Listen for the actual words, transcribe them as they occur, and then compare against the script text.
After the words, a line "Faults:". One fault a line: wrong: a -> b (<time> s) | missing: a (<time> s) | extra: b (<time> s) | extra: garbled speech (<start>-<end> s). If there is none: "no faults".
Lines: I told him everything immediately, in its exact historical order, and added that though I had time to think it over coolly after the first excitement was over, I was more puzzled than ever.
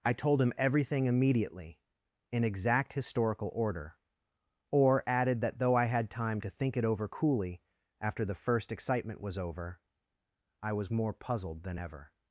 I told him everything immediately, in exact historical order, or added that though I had time to think it over coolly after the first excitement was over, I was more puzzled than ever.
Faults:
missing: its (2.4 s)
wrong: and -> or (4.7 s)